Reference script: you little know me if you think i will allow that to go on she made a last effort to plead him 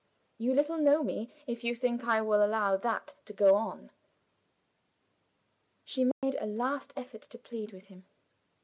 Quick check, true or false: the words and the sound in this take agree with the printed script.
false